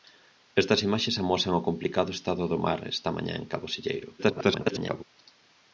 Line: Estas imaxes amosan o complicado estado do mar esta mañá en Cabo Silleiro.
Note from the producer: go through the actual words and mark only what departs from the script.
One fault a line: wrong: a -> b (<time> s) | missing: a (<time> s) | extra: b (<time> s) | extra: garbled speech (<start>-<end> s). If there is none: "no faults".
extra: garbled speech (4.2-5.0 s)